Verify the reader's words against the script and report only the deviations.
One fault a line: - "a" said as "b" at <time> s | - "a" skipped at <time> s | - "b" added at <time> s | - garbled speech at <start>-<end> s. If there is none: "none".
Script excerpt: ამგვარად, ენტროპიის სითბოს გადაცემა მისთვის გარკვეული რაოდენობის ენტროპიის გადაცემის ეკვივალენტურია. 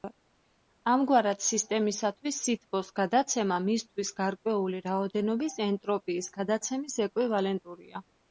- "ენტროპიის" said as "სისტემისათვის" at 1.5 s